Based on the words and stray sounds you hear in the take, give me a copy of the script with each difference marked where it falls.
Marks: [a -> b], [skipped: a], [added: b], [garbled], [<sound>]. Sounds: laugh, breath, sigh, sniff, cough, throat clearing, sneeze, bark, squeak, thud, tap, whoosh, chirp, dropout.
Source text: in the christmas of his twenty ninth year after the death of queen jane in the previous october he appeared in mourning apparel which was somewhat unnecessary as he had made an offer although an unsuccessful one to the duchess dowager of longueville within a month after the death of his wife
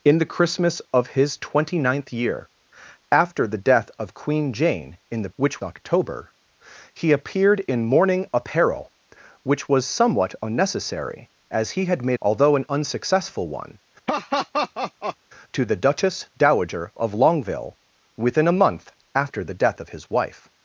in the christmas of his twenty ninth year after the death of queen jane in the [previous -> which] october he appeared in mourning apparel which was somewhat unnecessary as he had made [skipped: an offer] although an unsuccessful one [laugh] to the duchess dowager of longueville within a month after the death of his wife